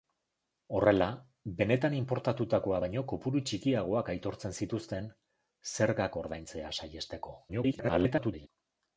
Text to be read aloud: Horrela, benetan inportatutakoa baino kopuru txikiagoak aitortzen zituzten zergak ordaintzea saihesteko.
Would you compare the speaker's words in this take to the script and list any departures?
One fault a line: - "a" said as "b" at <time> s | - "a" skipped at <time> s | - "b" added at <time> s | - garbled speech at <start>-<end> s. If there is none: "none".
- garbled speech at 7.5-8.5 s